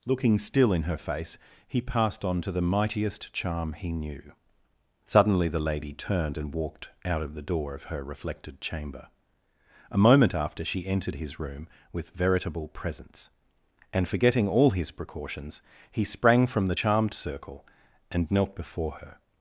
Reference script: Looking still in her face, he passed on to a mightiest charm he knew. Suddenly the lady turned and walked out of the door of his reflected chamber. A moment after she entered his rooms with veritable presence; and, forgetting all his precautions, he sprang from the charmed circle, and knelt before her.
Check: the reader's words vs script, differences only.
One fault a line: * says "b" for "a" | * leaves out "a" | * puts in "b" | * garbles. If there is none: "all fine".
* says "the" for "a"
* says "her" for "his"
* says "room" for "rooms"